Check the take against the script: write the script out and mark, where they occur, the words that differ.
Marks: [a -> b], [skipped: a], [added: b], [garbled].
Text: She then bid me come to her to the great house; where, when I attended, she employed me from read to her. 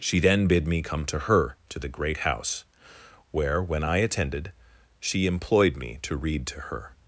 She then bid me come to her to the great house; where, when I attended, she employed me [from -> to] read to her.